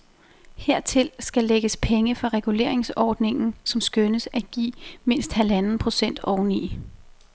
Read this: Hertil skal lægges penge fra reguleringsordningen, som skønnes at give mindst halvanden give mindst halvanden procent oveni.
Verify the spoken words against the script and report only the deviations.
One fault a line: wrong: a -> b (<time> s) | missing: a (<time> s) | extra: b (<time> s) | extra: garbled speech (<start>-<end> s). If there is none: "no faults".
missing: give mindst halvanden (5.8 s)